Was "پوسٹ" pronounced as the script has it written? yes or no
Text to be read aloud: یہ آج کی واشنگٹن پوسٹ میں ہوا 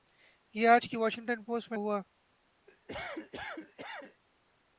yes